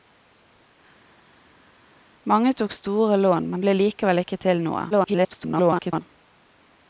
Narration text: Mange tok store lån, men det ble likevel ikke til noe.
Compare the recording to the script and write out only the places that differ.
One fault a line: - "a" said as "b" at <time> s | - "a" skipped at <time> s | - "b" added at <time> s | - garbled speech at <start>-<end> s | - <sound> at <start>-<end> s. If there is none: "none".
- "det" skipped at 3.6 s
- garbled speech at 4.9-6.0 s